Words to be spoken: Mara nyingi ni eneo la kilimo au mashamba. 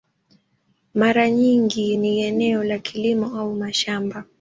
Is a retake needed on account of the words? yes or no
no